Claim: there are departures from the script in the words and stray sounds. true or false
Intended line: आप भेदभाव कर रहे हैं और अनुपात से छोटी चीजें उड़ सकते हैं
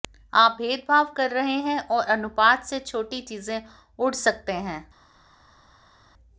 false